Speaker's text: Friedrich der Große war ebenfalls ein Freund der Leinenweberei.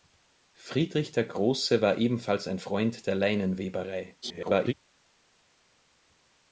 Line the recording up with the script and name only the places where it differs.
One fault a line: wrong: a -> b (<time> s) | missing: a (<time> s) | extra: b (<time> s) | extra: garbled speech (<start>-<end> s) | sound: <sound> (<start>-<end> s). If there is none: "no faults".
extra: garbled speech (4.2-4.7 s)